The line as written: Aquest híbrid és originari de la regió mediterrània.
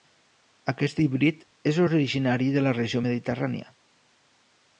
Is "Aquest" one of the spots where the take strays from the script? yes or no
no